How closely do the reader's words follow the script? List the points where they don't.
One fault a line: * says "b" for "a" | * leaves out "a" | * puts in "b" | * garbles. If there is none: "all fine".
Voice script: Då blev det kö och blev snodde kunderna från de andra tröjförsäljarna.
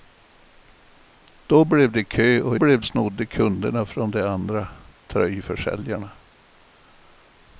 all fine